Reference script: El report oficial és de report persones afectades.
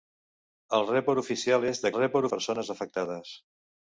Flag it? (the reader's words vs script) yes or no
no